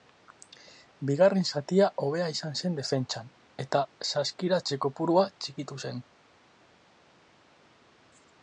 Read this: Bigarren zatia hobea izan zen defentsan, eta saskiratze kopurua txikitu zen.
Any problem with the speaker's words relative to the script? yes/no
no